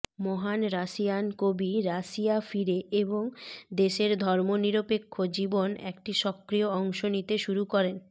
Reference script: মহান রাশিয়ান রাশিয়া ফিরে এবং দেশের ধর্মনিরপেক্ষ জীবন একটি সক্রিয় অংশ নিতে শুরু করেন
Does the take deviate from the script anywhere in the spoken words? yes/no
yes